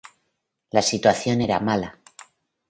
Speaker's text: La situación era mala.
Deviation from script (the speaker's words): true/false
false